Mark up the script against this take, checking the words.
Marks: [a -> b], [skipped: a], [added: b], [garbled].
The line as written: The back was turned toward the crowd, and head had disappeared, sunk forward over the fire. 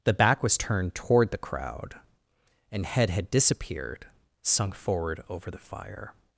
The back was turned toward the crowd, and head had disappeared, sunk forward over the fire.